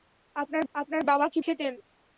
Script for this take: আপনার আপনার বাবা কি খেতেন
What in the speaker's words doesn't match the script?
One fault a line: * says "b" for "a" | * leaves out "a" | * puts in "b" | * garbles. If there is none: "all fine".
all fine